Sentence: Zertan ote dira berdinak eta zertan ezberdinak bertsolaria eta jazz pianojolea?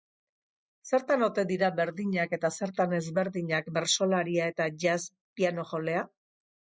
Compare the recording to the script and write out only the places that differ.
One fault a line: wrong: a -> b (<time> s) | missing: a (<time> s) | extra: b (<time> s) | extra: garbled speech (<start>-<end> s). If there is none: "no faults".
no faults